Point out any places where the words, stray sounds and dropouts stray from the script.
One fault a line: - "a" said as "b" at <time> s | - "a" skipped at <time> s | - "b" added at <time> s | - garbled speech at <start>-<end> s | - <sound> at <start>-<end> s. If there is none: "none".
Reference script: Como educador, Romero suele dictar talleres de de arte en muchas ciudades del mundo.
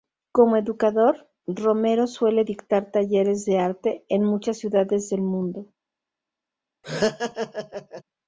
- "de" skipped at 3.6 s
- laugh at 6.8-8.0 s